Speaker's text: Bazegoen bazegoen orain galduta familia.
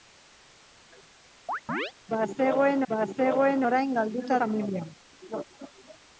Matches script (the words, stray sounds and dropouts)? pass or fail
fail